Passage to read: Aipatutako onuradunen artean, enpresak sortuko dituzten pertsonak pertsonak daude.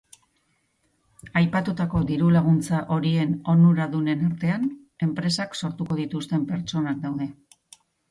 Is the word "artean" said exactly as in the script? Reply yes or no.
yes